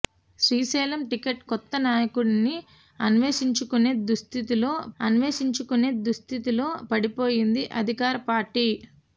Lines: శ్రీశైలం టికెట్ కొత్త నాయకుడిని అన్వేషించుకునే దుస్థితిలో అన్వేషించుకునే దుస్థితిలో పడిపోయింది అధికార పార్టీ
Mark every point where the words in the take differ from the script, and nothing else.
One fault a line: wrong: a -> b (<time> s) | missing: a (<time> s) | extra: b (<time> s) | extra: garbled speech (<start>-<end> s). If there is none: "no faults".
no faults